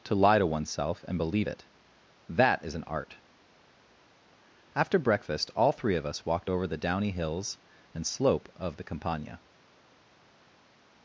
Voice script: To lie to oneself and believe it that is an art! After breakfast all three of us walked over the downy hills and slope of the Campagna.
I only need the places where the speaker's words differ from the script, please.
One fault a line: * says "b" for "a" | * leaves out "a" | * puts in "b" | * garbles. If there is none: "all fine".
all fine